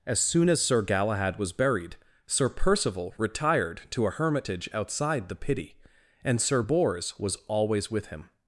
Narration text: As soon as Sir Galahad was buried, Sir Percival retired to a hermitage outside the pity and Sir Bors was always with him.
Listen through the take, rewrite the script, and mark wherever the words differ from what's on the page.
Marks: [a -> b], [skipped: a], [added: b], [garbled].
As soon as Sir Galahad was buried, Sir Percival retired to a hermitage outside the pity and Sir Bors was always with him.